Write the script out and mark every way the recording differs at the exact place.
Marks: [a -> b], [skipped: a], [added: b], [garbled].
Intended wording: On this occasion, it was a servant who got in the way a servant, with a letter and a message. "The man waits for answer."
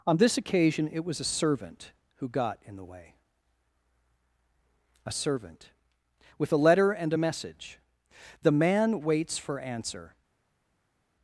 On this occasion, it was a servant who got in the way a servant, with a letter and a message. "The man waits for answer."